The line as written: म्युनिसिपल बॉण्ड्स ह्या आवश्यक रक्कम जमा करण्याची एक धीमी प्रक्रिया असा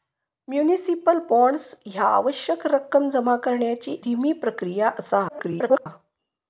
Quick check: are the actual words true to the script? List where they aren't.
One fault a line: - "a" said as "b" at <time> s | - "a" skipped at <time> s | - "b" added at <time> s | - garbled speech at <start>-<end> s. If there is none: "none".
- "एक" skipped at 4.0 s
- garbled speech at 5.3-5.9 s